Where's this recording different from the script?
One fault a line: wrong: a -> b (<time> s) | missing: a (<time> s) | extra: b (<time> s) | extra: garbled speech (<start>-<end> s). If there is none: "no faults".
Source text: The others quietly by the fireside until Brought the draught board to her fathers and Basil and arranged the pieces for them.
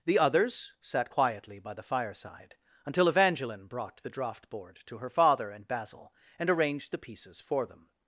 extra: sat (0.8 s)
extra: Evangeline (3.1 s)
wrong: fathers -> father (5.1 s)